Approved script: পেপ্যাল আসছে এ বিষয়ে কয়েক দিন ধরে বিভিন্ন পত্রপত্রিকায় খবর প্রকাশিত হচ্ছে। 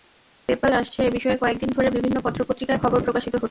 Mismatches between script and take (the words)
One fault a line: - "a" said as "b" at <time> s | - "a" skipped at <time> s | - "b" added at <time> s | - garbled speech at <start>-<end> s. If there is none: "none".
none